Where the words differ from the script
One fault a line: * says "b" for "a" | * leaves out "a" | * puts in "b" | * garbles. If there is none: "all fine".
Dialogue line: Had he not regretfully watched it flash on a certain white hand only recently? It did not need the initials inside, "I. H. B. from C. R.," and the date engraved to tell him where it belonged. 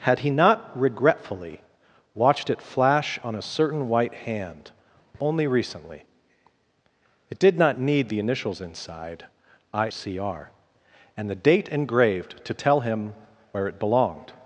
* leaves out "H B from"